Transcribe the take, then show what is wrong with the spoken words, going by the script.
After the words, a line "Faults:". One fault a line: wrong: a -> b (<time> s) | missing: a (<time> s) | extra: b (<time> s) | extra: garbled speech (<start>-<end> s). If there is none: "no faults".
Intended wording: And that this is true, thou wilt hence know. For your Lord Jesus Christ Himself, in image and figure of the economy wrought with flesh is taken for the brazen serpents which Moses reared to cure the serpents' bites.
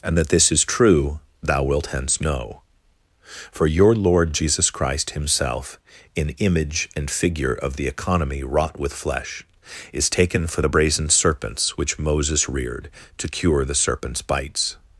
And that this is true, thou wilt hence know. For your Lord Jesus Christ Himself, in image and figure of the economy wrought with flesh is taken for the brazen serpents which Moses reared to cure the serpents' bites.
Faults:
no faults